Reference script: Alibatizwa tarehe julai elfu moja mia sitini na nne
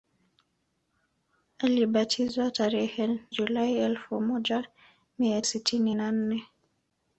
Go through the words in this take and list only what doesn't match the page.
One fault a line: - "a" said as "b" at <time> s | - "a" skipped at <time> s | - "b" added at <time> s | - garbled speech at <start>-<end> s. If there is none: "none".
none